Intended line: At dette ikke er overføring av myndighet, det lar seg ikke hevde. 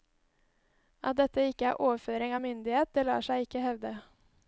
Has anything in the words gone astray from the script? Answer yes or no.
no